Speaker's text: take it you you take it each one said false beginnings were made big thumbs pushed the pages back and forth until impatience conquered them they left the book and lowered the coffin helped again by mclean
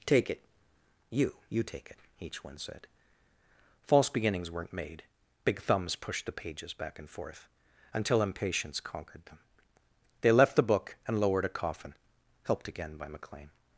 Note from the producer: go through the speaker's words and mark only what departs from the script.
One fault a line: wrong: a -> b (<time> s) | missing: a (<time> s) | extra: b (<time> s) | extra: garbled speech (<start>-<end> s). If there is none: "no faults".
wrong: were -> weren't (4.5 s)
wrong: the -> a (11.4 s)